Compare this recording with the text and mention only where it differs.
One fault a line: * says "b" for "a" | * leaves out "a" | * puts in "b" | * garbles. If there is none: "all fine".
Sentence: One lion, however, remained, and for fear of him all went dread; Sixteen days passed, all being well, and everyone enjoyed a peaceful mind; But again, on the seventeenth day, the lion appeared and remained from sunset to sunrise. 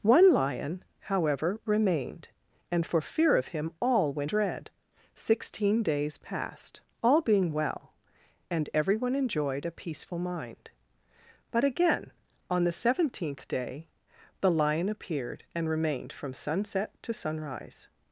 all fine